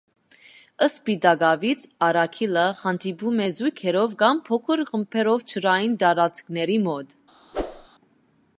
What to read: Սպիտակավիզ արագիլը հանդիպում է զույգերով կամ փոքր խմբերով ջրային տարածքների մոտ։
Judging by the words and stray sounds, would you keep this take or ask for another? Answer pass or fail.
fail